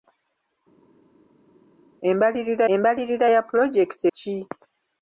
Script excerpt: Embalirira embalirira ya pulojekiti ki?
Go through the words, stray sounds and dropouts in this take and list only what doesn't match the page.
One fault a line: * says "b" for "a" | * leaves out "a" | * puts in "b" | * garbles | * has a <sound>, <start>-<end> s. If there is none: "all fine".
all fine